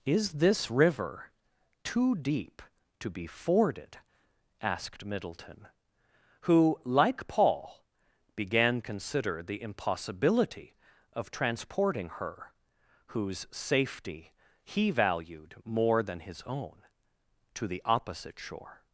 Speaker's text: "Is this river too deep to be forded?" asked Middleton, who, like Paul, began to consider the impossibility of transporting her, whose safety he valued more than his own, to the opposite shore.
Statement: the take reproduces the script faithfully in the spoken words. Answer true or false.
false